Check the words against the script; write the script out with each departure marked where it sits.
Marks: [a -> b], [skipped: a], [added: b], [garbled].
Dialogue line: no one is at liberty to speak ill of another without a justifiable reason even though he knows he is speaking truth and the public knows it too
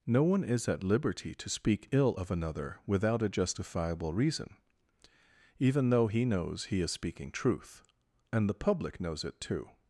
no one is at liberty to speak ill of another without a justifiable reason even though he knows he is speaking truth and the public knows it too